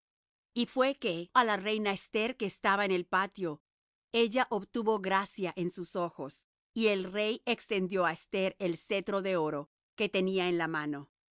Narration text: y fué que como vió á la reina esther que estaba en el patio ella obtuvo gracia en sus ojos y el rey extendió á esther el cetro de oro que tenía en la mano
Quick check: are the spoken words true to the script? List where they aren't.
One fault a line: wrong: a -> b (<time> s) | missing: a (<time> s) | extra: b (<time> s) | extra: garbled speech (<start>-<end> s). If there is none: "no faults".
missing: como vió (1.3 s)